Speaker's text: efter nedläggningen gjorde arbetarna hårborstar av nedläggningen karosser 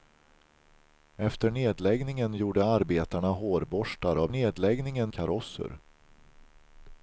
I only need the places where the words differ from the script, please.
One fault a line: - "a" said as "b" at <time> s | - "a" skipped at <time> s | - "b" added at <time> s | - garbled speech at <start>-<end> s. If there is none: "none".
none